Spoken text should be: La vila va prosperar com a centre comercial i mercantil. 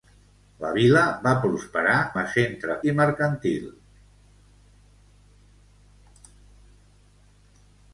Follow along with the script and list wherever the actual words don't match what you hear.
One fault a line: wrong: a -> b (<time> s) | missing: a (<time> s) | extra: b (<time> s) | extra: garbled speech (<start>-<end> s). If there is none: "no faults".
missing: com (1.9 s)
missing: comercial (2.8 s)